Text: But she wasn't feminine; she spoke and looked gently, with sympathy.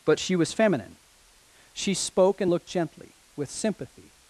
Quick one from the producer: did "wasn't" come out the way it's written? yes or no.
no